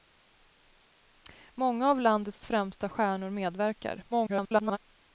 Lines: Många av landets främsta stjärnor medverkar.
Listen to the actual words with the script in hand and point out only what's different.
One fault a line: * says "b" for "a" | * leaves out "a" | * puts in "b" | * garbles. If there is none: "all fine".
* garbles